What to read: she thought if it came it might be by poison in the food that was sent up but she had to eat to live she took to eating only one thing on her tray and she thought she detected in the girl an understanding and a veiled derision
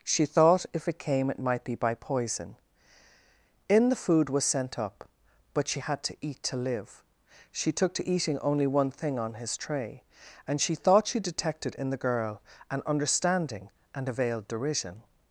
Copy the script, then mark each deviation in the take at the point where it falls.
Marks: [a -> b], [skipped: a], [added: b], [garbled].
she thought if it came it might be by poison in the food [skipped: that] was sent up but she had to eat to live she took to eating only one thing on [her -> his] tray and she thought she detected in the girl an understanding and a veiled derision